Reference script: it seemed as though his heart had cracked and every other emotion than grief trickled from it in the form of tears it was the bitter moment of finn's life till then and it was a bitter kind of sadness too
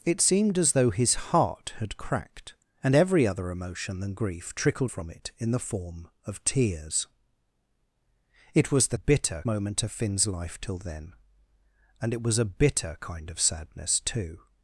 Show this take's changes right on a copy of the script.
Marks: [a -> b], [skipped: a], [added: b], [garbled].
it seemed as though his heart had cracked and every other emotion than grief trickled from it in the form of tears it was the bitter moment of finn's life till then and it was a bitter kind of sadness too